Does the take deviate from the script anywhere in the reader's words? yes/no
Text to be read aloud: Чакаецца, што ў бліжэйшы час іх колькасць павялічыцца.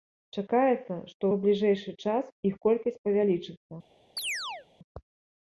no